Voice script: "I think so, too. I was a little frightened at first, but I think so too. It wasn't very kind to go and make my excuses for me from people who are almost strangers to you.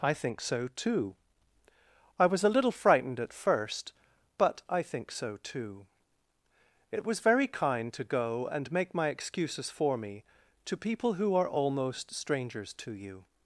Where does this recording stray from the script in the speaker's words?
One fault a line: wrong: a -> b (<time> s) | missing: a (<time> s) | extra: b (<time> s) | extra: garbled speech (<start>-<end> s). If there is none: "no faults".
wrong: wasn't -> was (7.0 s)
wrong: from -> to (10.7 s)